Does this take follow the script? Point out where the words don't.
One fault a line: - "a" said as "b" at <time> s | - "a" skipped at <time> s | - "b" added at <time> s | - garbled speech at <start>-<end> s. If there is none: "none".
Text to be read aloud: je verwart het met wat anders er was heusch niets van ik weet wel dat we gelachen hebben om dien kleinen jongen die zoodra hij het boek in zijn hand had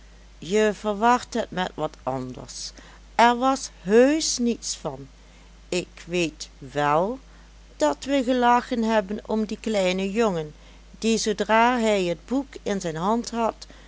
none